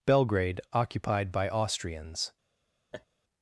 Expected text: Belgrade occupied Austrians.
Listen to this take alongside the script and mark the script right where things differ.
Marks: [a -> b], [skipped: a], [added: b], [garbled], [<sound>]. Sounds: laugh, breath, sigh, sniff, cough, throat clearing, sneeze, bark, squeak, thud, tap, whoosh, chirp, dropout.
Belgrade occupied [added: by] Austrians. [laugh]